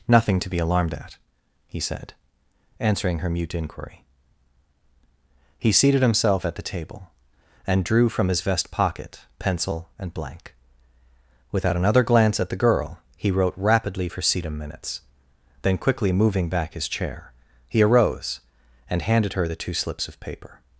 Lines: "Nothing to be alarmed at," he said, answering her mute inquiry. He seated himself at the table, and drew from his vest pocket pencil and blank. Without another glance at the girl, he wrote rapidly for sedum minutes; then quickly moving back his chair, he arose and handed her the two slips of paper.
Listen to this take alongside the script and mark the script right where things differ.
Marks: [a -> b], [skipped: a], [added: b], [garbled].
"Nothing to be alarmed at," he said, answering her mute inquiry. He seated himself at the table, and drew from his vest pocket pencil and blank. Without another glance at the girl, he wrote rapidly for sedum minutes; then quickly moving back his chair, he arose and handed her the two slips of paper.